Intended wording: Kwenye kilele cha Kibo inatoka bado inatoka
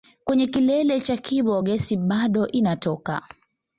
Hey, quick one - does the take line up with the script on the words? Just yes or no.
no